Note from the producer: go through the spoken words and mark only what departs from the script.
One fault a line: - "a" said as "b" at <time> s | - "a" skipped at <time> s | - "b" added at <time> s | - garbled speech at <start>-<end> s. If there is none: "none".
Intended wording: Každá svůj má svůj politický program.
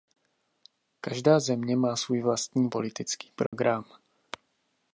- "svůj" said as "země" at 1.4 s
- "vlastní" added at 2.2 s